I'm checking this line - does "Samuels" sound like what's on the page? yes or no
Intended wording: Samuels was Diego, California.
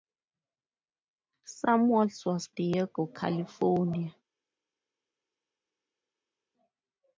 yes